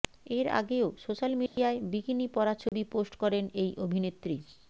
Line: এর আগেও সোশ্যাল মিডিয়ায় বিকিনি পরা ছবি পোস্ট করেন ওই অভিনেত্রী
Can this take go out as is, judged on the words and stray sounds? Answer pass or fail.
fail